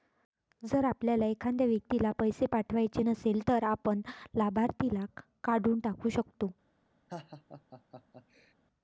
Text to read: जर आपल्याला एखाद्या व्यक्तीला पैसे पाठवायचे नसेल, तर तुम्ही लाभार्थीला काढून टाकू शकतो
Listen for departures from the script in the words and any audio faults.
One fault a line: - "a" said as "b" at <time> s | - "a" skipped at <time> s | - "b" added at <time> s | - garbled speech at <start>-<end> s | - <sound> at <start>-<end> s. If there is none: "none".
- "तुम्ही" said as "आपण" at 3.6 s
- laugh at 7.1-8.5 s